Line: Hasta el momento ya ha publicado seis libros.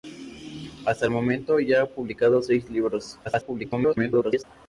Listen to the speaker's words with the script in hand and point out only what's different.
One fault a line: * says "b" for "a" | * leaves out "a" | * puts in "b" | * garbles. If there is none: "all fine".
* garbles